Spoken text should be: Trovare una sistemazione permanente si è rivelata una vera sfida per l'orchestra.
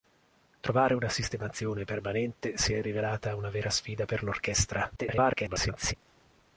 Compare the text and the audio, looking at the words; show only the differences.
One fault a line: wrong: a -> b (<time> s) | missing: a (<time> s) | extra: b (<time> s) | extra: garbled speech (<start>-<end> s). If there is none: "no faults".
extra: garbled speech (5.0-5.9 s)